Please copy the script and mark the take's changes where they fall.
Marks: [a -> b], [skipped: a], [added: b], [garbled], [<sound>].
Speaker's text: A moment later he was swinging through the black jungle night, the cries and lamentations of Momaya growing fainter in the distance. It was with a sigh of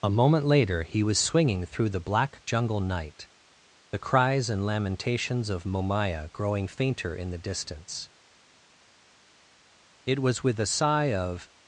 A moment later he was swinging through the black jungle night, the cries and lamentations of Momaya growing fainter in the distance. It was with a sigh of